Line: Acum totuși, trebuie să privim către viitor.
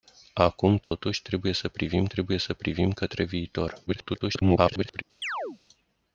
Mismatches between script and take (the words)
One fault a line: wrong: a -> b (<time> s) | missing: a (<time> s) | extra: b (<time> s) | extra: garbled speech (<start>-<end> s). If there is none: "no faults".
extra: trebuie să privim (2.1 s)
extra: garbled speech (3.9-5.0 s)